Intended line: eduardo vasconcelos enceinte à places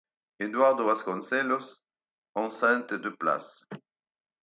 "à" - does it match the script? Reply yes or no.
no